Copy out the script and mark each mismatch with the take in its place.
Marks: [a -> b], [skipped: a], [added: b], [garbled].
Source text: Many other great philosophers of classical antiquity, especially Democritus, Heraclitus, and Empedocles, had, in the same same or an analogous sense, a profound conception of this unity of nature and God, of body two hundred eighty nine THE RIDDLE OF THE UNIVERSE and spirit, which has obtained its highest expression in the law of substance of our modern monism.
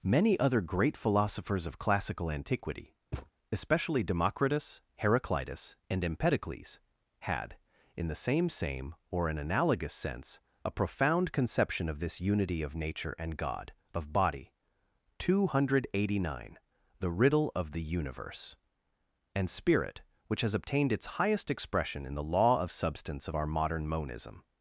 Many other great philosophers of classical antiquity, especially Democritus, Heraclitus, and Empedocles, had, in the same same or an analogous sense, a profound conception of this unity of nature and God, of body two hundred eighty nine THE RIDDLE OF THE UNIVERSE and spirit, which has obtained its highest expression in the law of substance of our modern monism.